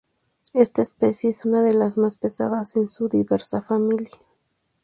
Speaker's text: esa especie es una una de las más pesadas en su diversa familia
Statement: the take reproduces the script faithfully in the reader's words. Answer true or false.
false